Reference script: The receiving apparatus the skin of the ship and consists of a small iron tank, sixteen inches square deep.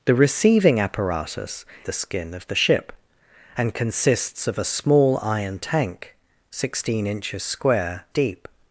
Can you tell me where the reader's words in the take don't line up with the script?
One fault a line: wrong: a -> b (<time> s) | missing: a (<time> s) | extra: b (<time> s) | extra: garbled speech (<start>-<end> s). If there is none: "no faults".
no faults